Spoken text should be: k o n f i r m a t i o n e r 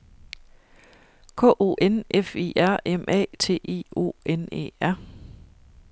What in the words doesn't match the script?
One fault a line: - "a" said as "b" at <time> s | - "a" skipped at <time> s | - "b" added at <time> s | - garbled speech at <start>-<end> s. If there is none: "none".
none